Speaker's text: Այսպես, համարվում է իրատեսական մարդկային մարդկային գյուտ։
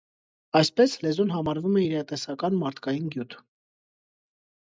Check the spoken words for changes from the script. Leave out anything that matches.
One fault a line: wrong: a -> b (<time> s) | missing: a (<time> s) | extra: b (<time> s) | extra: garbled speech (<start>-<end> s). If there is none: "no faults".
extra: լեզուն (1.1 s)
missing: մարդկային (3.1 s)